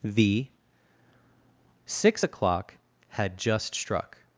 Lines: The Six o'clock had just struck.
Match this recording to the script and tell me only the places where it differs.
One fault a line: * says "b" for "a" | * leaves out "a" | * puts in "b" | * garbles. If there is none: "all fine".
all fine